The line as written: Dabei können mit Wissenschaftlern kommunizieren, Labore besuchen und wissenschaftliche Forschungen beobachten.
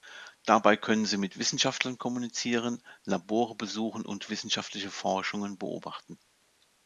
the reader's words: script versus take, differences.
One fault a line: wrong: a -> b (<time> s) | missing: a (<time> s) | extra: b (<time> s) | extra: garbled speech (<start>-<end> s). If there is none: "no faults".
extra: sie (1.1 s)